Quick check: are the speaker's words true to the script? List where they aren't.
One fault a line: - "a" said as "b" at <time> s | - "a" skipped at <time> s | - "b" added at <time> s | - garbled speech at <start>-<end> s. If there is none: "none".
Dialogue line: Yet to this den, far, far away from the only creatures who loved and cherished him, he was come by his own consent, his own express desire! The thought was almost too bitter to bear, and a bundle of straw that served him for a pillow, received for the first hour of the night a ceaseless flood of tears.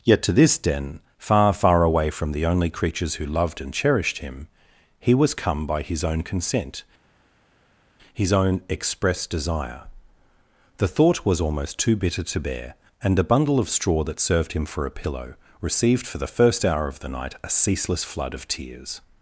none